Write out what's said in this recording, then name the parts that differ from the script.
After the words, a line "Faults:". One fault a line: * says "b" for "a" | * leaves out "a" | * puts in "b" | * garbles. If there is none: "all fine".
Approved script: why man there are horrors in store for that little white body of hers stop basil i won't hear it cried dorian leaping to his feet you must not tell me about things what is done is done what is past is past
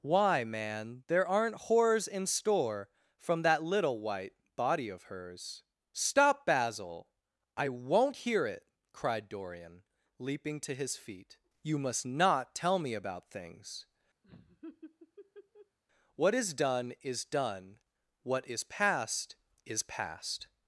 why man there aren't horrors in store from that little white body of hers stop basil i won't hear it cried dorian leaping to his feet you must not tell me about things what is done is done what is past is past
Faults:
* says "aren't" for "are"
* says "from" for "for"